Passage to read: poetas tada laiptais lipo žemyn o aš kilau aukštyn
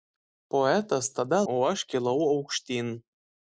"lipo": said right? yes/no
no